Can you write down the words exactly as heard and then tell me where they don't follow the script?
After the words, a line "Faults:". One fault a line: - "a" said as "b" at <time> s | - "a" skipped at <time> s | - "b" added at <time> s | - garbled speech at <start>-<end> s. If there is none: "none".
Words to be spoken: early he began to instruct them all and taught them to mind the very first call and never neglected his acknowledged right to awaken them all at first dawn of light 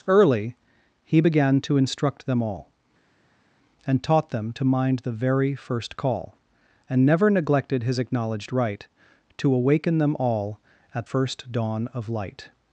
early he began to instruct them all and taught them to mind the very first call and never neglected his acknowledged right to awaken them all at first dawn of light
Faults:
none